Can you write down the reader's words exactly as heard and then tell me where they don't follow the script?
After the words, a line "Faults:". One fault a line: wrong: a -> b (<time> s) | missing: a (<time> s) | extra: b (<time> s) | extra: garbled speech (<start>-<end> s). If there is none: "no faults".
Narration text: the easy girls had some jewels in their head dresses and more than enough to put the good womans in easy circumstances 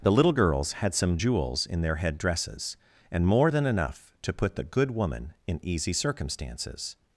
the little girls had some jewels in their head dresses and more than enough to put the good woman in easy circumstances
Faults:
wrong: easy -> little (0.1 s)
wrong: womans -> woman (4.9 s)